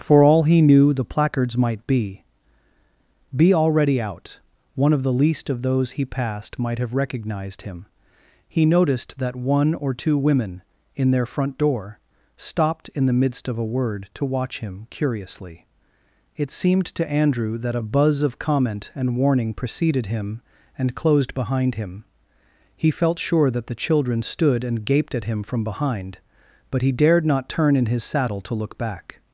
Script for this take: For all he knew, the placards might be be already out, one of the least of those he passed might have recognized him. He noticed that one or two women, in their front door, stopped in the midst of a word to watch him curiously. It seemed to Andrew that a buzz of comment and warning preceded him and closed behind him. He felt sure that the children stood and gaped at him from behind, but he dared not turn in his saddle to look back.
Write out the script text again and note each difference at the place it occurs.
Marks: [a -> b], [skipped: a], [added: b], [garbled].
For all he knew, the placards might be be already out, one of the least of those he passed might have recognized him. He noticed that one or two women, in their front door, stopped in the midst of a word to watch him curiously. It seemed to Andrew that a buzz of comment and warning preceded him and closed behind him. He felt sure that the children stood and gaped at him from behind, but he dared not turn in his saddle to look back.